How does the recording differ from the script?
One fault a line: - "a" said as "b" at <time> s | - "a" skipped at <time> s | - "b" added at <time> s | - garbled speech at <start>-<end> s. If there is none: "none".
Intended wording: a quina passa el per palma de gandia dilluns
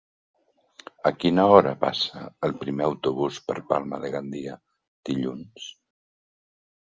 - "hora" added at 1.6 s
- "primer autobús" added at 2.6 s